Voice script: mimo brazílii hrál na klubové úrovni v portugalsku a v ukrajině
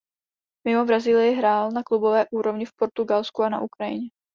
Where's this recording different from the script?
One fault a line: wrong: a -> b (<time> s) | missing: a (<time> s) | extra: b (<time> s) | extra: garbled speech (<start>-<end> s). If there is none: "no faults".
wrong: v -> na (3.5 s)